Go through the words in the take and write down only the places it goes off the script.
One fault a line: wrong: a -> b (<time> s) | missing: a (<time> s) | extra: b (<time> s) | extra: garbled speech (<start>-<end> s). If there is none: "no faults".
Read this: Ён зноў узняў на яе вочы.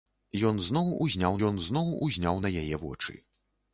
extra: ён зноў узняў (1.5 s)